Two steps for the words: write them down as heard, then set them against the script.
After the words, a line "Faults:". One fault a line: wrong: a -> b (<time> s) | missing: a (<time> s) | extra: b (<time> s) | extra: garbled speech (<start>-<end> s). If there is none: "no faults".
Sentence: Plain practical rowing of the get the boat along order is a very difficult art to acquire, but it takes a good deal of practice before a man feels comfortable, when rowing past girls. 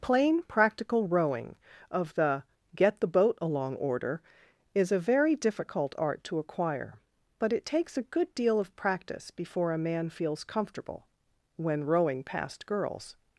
Plain practical rowing of the get the boat along order is a very difficult art to acquire, but it takes a good deal of practice before a man feels comfortable, when rowing past girls.
Faults:
no faults